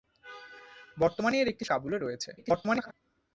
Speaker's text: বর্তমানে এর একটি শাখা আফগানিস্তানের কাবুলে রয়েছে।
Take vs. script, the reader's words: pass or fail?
fail